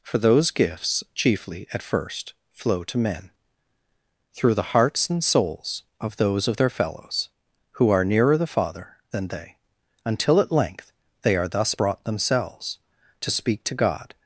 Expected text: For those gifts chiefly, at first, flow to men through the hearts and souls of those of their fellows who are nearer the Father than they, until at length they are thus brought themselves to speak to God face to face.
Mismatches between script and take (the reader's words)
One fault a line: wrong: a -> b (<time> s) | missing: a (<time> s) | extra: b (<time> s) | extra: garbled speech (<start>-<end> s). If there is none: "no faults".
missing: face to face (14.1 s)